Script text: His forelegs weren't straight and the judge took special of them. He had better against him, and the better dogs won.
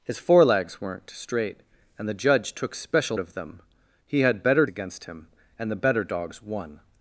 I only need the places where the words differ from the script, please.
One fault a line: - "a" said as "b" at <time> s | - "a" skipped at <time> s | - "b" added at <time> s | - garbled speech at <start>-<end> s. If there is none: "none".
none